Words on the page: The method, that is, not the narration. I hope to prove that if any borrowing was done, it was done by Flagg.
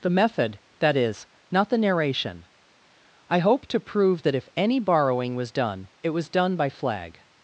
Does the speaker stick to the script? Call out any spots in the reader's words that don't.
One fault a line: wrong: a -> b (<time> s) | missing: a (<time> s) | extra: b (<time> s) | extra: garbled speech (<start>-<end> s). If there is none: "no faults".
no faults